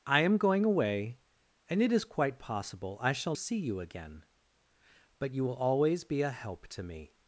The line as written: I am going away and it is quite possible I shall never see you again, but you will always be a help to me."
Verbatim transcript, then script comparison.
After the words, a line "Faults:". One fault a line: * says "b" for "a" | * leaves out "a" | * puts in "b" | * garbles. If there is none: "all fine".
I am going away and it is quite possible I shall see you again, but you will always be a help to me."
Faults:
* leaves out "never"